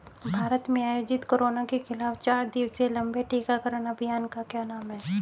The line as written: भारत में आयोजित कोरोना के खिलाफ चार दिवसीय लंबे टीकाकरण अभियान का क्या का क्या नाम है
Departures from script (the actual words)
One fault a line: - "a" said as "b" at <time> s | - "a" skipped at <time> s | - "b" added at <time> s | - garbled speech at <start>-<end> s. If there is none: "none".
- "का क्या" skipped at 4.6 s